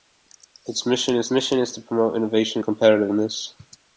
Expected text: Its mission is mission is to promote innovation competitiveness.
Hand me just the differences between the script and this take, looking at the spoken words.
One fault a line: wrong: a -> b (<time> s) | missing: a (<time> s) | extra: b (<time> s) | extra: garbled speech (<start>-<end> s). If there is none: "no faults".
no faults